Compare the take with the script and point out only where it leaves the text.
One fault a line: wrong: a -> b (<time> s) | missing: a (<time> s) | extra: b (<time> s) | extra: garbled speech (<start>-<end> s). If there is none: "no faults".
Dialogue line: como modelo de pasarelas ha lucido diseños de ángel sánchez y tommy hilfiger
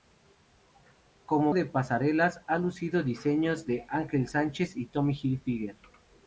missing: modelo (1.5 s)